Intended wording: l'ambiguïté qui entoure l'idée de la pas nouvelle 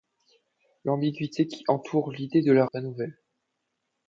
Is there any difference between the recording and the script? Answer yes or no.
no